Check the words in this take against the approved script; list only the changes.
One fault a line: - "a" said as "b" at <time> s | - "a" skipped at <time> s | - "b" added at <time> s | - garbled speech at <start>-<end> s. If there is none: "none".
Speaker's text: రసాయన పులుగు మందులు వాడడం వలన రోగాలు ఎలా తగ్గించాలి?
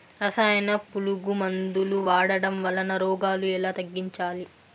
none